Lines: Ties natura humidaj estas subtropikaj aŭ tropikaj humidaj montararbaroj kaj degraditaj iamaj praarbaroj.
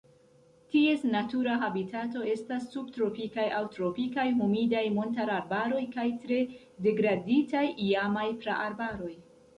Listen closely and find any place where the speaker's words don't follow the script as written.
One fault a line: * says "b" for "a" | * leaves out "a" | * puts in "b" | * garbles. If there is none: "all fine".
* says "habitato" for "humidaj"
* puts in "tre"